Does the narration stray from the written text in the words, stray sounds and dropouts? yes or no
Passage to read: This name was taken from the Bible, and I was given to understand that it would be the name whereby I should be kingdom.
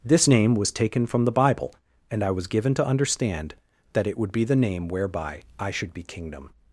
no